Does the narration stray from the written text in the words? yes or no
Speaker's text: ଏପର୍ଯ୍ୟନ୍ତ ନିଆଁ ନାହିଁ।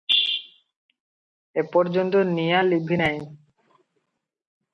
yes